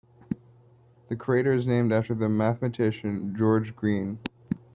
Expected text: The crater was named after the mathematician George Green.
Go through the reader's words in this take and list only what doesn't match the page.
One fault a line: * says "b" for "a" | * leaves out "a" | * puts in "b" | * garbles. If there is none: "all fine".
* says "is" for "was"